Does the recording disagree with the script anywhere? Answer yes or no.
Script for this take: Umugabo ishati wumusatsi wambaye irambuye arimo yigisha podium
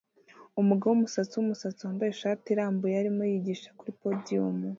yes